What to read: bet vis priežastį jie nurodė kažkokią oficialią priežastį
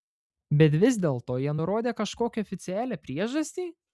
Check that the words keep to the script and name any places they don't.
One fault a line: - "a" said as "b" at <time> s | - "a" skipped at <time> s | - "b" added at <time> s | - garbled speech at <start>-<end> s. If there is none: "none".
- "priežastį" said as "dėlto" at 1.0 s